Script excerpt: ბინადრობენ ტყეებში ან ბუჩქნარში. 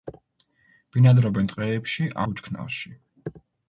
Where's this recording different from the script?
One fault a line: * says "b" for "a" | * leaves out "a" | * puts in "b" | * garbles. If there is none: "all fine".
* leaves out "ან"